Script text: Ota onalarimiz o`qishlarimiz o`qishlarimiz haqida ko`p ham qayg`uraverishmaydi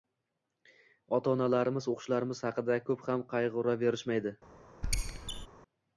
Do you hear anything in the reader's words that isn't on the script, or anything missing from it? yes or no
yes